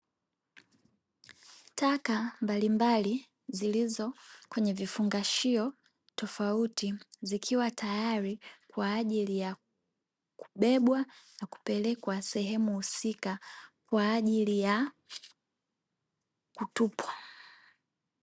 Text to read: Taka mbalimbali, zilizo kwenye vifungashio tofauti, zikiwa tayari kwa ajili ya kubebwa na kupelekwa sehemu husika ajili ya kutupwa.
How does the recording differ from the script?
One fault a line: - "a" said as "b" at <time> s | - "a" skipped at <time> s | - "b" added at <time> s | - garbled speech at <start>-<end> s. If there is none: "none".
- "kwa" added at 13.9 s